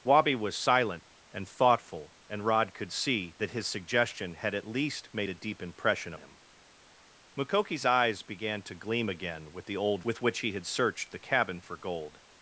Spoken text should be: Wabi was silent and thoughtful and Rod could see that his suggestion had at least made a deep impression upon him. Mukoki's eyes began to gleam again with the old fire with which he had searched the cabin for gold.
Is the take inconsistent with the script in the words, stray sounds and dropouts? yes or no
yes